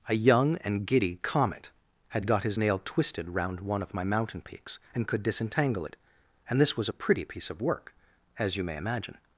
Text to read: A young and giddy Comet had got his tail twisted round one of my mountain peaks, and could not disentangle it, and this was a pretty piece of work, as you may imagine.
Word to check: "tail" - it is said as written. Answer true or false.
false